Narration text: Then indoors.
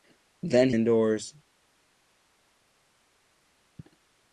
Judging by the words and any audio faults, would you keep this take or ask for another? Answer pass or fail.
pass